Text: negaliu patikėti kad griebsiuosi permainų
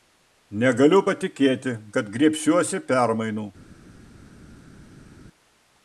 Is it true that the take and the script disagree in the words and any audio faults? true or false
false